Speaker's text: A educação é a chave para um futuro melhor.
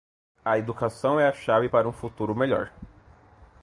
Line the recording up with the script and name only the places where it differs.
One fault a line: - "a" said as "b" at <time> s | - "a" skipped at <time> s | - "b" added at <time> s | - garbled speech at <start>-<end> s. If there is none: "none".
none